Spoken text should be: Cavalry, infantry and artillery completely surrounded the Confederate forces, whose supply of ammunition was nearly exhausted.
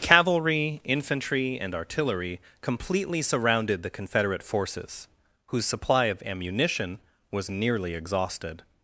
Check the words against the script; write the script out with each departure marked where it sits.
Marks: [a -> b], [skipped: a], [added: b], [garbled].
Cavalry, infantry and artillery completely surrounded the Confederate forces, whose supply of ammunition was nearly exhausted.